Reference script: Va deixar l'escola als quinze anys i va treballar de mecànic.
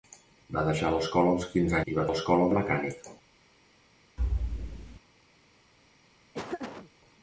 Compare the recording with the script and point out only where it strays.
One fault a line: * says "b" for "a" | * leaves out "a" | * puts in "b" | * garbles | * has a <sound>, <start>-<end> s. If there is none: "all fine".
* leaves out "anys"
* says "l'escola" for "treballar"
* has a thud, 4.2-5.0 s
* has a laugh, 6.3-6.9 s